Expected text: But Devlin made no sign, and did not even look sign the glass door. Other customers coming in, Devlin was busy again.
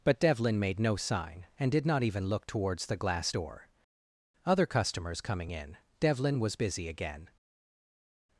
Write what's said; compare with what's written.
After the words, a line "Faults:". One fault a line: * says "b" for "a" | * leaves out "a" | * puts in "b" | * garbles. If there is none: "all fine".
But Devlin made no sign, and did not even look towards the glass door. Other customers coming in, Devlin was busy again.
Faults:
* says "towards" for "sign"